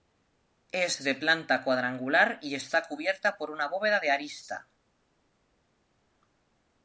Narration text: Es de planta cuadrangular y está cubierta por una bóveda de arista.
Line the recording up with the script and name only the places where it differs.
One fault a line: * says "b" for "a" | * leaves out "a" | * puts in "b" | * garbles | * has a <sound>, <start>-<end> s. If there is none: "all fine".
all fine